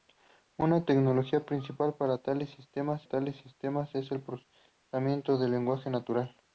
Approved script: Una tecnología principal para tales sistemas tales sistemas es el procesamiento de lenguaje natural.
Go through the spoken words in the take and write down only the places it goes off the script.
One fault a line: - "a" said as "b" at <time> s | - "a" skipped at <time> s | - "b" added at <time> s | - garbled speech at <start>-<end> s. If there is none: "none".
none